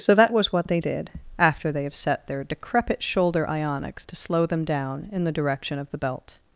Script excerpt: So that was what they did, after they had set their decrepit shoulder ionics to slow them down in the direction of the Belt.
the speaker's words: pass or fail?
fail